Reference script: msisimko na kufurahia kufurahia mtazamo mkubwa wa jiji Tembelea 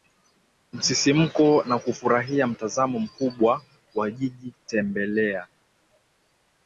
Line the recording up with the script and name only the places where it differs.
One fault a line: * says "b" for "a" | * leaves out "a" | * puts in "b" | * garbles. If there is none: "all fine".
* leaves out "kufurahia"